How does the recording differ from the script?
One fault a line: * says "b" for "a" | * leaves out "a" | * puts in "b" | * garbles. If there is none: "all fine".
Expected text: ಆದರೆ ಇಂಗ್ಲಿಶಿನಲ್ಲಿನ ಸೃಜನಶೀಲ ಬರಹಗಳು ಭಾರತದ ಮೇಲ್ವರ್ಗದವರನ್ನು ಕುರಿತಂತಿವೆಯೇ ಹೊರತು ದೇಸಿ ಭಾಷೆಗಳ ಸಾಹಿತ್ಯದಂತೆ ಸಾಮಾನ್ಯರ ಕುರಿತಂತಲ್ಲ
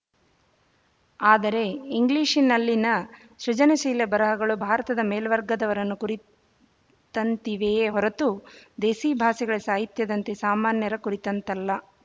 all fine